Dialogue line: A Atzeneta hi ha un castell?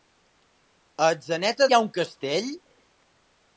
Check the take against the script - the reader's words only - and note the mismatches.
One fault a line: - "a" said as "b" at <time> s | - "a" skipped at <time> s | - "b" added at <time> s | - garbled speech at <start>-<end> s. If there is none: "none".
none